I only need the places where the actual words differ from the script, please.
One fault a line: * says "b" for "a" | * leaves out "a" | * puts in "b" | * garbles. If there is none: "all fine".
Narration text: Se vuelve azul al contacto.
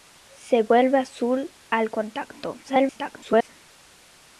* garbles